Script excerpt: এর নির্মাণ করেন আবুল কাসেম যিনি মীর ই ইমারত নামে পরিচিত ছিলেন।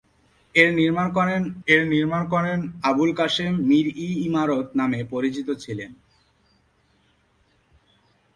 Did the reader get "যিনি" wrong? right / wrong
wrong